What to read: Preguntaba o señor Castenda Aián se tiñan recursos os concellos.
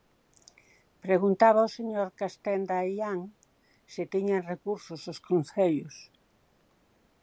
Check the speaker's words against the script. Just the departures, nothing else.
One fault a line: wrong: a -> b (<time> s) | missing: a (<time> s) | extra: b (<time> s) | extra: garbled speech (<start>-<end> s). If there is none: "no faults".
no faults